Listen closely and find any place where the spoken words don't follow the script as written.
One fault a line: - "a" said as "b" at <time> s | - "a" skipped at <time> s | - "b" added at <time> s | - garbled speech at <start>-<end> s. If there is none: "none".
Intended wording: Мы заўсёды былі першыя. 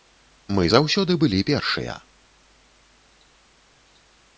none